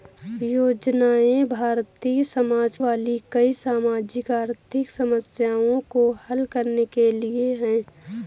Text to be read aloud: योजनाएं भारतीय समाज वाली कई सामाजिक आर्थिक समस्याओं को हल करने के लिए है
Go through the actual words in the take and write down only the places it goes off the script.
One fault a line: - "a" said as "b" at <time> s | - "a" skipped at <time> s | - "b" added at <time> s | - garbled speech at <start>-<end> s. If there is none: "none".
none